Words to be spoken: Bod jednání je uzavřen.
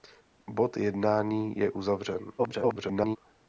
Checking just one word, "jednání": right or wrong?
right